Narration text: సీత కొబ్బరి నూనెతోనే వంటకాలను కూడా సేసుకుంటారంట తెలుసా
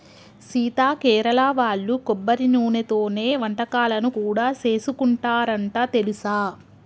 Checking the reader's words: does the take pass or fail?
fail